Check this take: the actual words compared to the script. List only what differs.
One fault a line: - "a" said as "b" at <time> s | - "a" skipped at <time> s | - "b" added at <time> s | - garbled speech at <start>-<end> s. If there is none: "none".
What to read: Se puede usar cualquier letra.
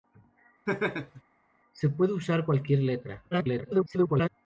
- garbled speech at 3.3-4.3 s